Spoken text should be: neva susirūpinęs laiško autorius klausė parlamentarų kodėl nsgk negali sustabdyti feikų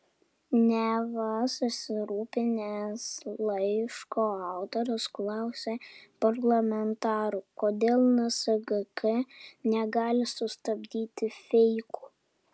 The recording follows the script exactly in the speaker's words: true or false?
true